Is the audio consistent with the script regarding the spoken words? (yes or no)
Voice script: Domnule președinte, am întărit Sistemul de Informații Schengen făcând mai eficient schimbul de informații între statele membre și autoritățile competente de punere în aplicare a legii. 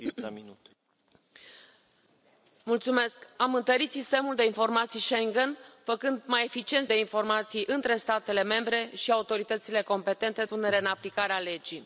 no